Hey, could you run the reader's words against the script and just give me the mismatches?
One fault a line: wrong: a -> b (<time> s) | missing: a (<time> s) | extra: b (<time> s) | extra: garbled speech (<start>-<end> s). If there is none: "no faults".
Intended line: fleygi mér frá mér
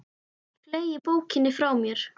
wrong: mér -> bókinni (1.1 s)